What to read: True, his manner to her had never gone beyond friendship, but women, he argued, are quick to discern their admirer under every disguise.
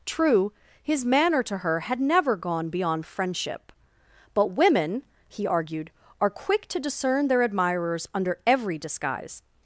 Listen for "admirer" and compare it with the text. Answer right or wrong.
wrong